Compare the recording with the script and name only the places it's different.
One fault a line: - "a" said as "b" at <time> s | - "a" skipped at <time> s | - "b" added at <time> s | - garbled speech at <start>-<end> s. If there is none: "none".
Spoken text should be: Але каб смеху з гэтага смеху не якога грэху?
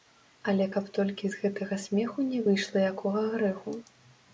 - "смеху" said as "толькі" at 1.0 s
- "выйшла" added at 2.5 s